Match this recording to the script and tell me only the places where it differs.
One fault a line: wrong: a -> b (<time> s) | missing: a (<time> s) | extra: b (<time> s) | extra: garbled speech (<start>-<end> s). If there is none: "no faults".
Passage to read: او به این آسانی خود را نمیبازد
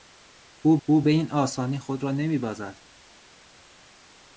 extra: او (0.8 s)